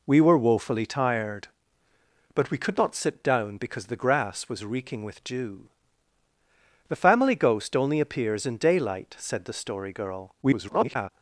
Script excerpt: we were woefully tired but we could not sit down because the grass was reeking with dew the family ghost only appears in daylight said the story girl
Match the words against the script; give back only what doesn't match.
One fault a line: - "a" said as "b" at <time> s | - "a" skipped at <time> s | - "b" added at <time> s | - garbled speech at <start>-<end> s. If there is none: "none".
- garbled speech at 10.4-11.1 s